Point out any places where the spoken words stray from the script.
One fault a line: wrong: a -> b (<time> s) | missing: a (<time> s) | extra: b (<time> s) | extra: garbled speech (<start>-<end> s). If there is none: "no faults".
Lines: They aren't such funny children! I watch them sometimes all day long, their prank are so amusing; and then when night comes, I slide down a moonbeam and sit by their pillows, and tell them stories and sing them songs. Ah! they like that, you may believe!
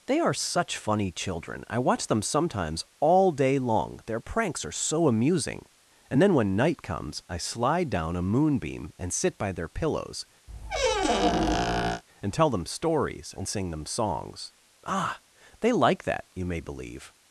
wrong: aren't -> are (0.2 s)
wrong: prank -> pranks (4.2 s)